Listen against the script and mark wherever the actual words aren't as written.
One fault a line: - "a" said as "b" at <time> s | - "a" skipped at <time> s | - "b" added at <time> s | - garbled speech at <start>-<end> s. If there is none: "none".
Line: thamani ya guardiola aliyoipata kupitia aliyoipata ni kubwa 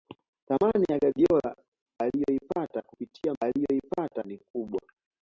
none